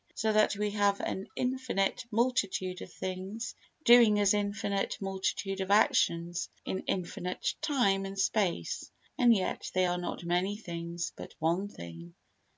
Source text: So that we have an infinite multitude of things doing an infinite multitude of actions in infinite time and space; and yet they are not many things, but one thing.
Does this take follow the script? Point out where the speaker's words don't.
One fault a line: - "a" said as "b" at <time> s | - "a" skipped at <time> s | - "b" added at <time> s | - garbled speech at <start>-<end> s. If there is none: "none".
none